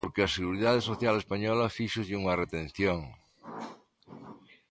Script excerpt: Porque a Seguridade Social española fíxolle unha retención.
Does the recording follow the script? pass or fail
pass